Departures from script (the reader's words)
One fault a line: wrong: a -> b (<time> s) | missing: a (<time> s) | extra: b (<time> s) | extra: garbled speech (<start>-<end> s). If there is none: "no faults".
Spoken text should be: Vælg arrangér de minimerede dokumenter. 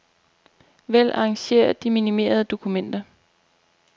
no faults